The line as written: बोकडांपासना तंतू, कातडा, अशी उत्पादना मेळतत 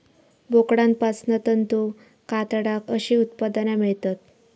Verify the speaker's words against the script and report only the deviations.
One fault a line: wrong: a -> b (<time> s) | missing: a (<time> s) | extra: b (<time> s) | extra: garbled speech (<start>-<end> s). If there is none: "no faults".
no faults